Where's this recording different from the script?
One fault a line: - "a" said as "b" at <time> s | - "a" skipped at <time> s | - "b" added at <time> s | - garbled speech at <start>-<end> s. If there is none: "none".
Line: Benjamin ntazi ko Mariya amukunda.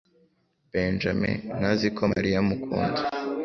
none